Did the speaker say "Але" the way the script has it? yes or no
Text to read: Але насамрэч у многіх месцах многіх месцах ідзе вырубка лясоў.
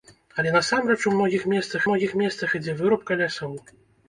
yes